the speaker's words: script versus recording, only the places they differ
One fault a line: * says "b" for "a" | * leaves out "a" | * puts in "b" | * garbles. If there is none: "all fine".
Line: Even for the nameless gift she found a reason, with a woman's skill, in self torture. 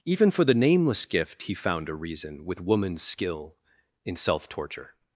* says "he" for "she"
* leaves out "a"